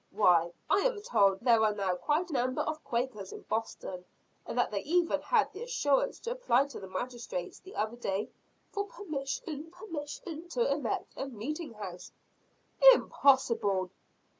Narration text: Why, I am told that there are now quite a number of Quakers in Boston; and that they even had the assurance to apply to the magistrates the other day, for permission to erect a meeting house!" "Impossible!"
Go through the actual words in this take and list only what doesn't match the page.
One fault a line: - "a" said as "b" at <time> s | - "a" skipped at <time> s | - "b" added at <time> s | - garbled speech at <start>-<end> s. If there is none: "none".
- "that" skipped at 1.4 s
- "a" skipped at 2.3 s
- "permission" added at 9.7 s